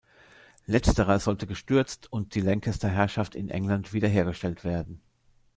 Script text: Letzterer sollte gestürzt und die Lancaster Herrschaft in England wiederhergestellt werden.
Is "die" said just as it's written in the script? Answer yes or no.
yes